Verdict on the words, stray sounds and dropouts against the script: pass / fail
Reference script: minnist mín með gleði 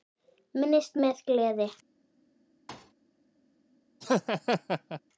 fail